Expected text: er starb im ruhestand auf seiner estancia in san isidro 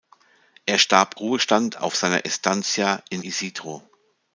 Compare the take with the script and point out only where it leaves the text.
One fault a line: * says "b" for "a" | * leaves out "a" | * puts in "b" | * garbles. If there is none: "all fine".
* leaves out "im"
* leaves out "san"